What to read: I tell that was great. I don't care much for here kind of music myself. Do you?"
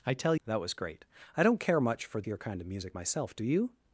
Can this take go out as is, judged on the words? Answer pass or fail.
pass